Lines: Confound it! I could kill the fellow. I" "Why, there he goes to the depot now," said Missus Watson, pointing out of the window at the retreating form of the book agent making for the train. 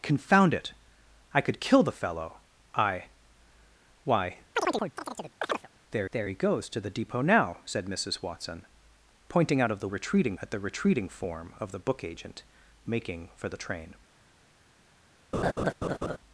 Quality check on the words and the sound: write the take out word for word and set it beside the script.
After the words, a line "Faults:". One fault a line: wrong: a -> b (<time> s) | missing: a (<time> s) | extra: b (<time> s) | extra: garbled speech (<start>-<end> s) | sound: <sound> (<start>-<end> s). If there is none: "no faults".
Confound it! I could kill the fellow. I" "Why, there there he goes to the depot now," said Missus Watson, pointing out of the retreating at the retreating form of the book agent making for the train.
Faults:
sound: chirp (4.6-5.7 s)
extra: there (6.1 s)
wrong: window -> retreating (9.9 s)
sound: laugh (15.3-16.2 s)